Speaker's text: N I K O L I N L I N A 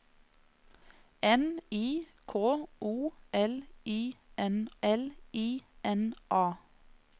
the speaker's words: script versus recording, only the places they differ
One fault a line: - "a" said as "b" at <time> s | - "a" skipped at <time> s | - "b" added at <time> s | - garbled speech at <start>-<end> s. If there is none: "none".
none